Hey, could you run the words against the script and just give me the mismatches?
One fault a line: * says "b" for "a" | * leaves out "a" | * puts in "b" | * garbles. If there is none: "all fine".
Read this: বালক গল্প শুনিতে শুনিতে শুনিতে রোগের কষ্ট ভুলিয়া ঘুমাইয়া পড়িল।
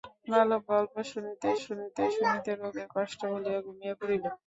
all fine